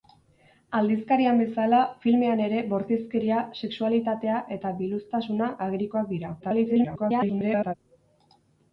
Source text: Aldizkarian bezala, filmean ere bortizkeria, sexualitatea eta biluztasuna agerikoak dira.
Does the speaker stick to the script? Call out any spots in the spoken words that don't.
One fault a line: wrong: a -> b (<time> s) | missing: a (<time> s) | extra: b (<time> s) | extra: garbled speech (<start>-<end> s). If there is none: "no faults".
extra: garbled speech (6.4-7.7 s)